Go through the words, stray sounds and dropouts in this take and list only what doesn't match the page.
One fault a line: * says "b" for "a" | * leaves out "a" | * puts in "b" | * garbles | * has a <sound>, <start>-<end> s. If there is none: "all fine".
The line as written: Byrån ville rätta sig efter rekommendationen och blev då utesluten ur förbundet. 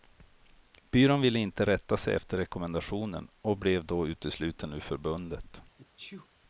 * puts in "inte"
* has a sneeze, 5.8-6.3 s